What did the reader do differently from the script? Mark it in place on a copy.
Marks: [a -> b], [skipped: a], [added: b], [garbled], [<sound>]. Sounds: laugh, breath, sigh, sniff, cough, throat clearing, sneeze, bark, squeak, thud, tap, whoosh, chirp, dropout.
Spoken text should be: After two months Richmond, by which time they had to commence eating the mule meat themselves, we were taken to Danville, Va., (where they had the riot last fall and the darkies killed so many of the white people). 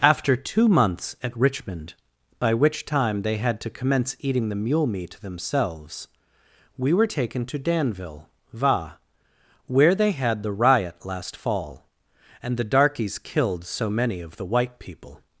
After two months [added: at] Richmond, by which time they had to commence eating the mule meat themselves, we were taken to Danville, Va., (where they had the riot last fall and the darkies killed so many of the white people).